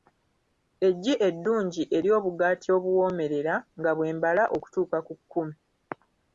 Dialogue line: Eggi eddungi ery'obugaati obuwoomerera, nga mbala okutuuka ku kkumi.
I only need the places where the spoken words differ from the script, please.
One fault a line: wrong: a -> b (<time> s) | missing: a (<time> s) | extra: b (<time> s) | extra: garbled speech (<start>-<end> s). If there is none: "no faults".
extra: bwe (4.0 s)